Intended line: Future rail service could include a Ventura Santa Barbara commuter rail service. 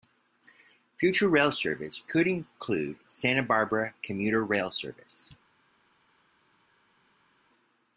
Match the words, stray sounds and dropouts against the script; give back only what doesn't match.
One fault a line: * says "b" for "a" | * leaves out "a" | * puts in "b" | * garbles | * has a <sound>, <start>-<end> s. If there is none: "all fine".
* leaves out "a Ventura"